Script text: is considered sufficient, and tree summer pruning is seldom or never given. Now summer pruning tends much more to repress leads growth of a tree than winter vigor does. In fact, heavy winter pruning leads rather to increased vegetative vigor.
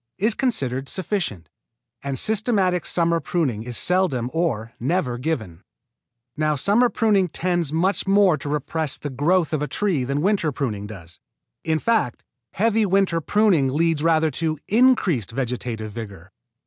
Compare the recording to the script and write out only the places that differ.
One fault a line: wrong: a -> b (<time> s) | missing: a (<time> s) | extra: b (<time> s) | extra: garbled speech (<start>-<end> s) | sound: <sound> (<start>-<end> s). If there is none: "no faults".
wrong: tree -> systematic (2.2 s)
wrong: leads -> the (9.0 s)
wrong: vigor -> pruning (10.5 s)